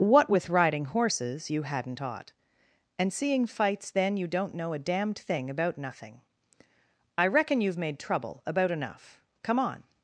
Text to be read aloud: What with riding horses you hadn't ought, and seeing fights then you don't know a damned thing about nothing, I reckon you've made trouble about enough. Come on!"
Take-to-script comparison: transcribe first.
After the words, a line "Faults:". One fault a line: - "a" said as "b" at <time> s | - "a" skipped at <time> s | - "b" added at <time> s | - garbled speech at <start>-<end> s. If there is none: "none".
What with riding horses you hadn't ought, and seeing fights then you don't know a damned thing about nothing, I reckon you've made trouble about enough. Come on!"
Faults:
none